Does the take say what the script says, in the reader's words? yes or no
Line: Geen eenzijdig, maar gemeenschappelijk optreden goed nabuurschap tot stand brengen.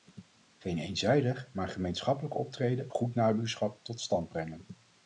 yes